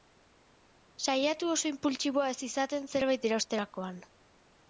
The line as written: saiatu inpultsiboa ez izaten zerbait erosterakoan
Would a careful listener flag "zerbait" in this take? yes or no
no